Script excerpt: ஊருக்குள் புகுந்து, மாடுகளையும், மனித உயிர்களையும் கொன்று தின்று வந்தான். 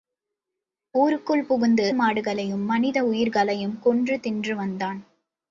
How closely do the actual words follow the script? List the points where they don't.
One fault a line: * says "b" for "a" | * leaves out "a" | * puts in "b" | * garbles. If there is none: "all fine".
all fine